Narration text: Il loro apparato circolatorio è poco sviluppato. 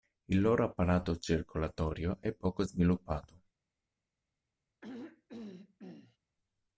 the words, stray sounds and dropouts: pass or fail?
fail